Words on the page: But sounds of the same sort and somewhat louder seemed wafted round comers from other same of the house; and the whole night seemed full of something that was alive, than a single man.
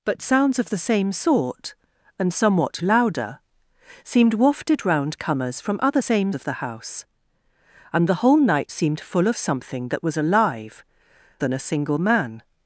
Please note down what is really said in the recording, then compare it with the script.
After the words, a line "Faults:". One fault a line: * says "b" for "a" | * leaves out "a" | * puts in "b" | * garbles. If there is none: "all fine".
But sounds of the same sort and somewhat louder seemed wafted round comers from other same of the house; and the whole night seemed full of something that was alive, than a single man.
Faults:
all fine